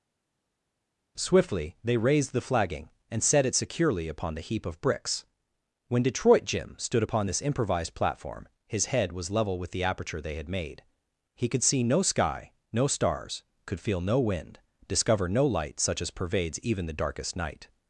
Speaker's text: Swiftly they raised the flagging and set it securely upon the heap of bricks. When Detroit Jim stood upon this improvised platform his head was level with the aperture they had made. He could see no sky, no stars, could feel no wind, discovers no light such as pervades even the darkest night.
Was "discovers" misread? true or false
true